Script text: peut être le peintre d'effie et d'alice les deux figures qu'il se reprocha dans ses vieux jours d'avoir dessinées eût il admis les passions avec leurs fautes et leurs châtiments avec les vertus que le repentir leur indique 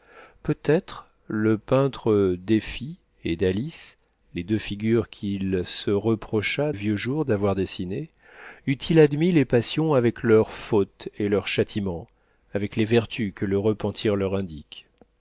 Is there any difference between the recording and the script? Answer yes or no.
yes